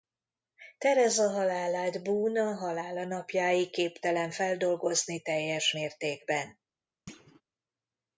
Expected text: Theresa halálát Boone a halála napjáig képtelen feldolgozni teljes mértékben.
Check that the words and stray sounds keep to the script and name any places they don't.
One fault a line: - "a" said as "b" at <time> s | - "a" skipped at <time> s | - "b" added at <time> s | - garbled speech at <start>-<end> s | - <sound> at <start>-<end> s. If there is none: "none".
- thud at 7.1-7.4 s